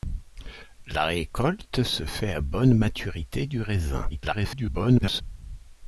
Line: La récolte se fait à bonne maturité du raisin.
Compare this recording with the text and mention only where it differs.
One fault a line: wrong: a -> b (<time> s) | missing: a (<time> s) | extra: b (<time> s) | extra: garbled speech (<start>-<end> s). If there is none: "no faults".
extra: garbled speech (4.1-5.2 s)